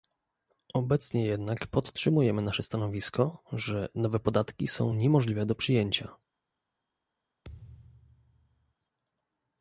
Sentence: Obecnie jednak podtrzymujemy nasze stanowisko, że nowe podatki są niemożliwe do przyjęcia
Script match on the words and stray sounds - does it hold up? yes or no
no